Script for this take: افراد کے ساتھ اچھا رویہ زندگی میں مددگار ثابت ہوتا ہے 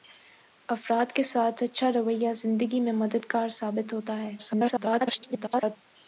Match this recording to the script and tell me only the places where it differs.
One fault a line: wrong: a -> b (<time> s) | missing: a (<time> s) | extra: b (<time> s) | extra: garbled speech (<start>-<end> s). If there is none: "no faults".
extra: garbled speech (4.4-5.8 s)